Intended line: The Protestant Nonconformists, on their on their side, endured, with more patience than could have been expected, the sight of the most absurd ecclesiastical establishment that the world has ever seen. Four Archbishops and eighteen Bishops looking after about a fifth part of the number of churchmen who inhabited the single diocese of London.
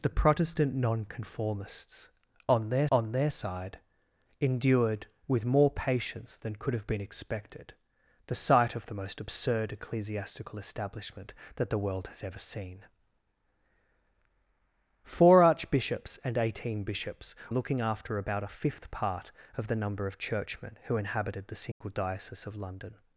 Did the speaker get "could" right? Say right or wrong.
right